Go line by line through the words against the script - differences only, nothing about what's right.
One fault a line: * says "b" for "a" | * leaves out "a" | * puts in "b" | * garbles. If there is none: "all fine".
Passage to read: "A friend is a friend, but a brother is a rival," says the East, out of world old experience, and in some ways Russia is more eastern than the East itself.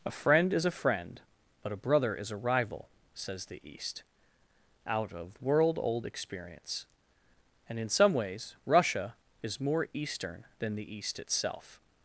all fine